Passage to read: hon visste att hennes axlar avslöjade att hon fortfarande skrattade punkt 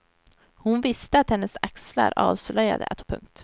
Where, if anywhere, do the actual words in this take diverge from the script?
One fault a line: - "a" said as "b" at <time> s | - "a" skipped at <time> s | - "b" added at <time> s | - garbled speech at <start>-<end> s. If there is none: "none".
- "hon fortfarande skrattade" skipped at 3.0 s